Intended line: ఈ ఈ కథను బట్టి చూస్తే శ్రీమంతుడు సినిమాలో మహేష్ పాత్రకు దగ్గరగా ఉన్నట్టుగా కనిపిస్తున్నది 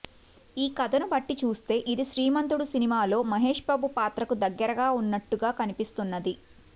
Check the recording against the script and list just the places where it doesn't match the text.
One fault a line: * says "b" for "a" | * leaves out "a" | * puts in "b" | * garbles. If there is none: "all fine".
* leaves out "ఈ"
* puts in "ఇది"
* puts in "బాబు"